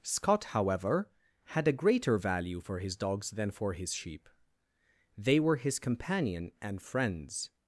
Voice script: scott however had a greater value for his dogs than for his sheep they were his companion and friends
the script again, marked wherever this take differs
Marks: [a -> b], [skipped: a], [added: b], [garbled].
scott however had a greater value for his dogs than for his sheep they were his companion and friends